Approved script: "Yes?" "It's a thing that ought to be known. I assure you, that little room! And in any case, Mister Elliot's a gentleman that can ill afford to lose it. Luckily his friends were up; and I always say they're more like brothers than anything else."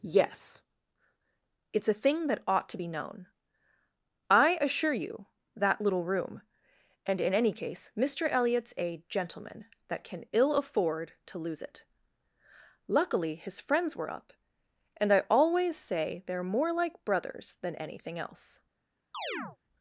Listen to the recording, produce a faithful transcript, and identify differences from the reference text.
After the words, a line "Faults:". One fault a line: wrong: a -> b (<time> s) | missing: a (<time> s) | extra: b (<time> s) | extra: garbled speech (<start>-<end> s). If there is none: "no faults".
"Yes?" "It's a thing that ought to be known. I assure you, that little room! And in any case, Mister Elliot's a gentleman that can ill afford to lose it. Luckily his friends were up; and I always say they're more like brothers than anything else."
Faults:
no faults